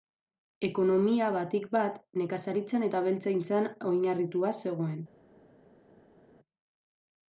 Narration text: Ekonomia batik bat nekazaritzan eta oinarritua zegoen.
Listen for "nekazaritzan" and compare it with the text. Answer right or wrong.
right